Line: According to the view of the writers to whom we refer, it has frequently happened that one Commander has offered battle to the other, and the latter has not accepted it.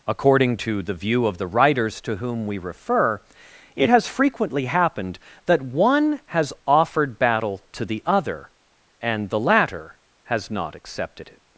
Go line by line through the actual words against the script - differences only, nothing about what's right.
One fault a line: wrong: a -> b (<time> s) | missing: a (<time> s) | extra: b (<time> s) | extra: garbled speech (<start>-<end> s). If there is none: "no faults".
missing: Commander (6.2 s)